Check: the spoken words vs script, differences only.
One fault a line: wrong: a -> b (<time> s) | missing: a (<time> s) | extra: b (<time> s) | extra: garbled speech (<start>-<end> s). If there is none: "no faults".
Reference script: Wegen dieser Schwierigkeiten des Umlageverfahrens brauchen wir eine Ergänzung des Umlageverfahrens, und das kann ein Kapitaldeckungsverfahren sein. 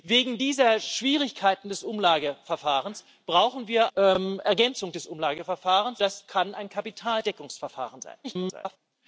missing: eine (3.9 s)
missing: und (6.0 s)
extra: garbled speech (8.2-8.8 s)